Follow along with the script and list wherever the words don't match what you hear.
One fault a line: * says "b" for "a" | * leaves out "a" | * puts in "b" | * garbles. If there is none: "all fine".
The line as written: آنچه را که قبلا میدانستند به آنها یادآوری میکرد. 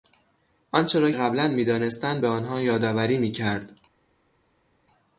* leaves out "که"